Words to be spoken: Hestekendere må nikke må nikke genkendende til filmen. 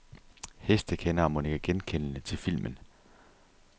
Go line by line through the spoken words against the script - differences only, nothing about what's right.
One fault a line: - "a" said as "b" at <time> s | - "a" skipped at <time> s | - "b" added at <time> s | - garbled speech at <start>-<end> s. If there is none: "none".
- "må nikke" skipped at 1.6 s